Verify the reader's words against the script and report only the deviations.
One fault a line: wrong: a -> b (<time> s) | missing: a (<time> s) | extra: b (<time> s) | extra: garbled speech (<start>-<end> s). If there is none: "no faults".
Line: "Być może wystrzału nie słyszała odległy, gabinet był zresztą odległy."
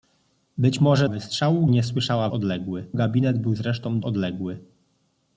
no faults